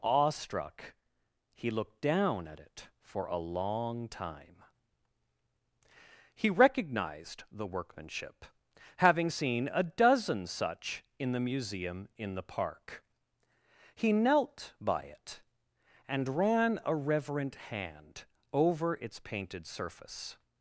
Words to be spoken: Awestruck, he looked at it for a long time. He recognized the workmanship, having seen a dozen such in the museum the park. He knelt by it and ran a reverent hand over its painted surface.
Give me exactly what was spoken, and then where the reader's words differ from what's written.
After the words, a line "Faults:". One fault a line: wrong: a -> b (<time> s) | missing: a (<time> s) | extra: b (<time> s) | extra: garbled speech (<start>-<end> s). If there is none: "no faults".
Awestruck, he looked down at it for a long time. He recognized the workmanship, having seen a dozen such in the museum in the park. He knelt by it and ran a reverent hand over its painted surface.
Faults:
extra: down (2.0 s)
extra: in (12.2 s)